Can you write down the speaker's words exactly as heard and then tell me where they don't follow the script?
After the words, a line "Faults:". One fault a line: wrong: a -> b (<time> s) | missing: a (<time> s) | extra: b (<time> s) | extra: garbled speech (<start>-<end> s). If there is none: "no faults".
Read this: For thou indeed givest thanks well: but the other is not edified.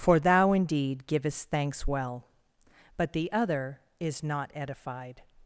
For thou indeed givest thanks well: but the other is not edified.
Faults:
no faults